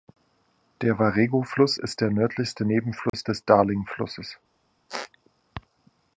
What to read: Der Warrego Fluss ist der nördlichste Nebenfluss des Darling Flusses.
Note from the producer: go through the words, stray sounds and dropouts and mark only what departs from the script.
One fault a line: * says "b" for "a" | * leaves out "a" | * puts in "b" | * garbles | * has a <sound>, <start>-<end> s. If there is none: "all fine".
* has a dropout, 3.1-3.1 s
* has a squeak, 4.9-5.1 s